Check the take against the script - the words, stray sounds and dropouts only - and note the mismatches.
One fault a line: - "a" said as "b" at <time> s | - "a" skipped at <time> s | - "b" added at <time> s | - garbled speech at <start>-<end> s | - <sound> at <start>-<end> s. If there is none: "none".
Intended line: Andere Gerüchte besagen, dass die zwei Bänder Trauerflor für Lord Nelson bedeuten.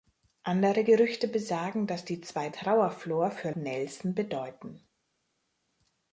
- "Bänder" skipped at 2.5 s
- "Lord" skipped at 3.5 s